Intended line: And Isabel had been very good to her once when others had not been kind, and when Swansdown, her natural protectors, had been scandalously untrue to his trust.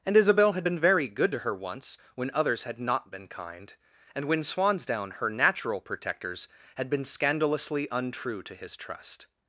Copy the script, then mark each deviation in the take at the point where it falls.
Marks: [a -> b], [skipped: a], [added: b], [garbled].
And Isabel had been very good to her once when others had not been kind, and when Swansdown, her natural protectors, had been scandalously untrue to his trust.